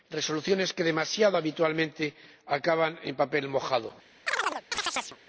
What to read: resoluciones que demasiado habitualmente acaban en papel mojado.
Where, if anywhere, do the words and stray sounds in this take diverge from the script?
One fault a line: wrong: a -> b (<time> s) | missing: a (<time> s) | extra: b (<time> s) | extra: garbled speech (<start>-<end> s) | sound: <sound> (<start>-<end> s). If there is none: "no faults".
sound: chirp (4.3-5.2 s)